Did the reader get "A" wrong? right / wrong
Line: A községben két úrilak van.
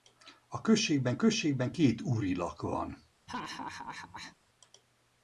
right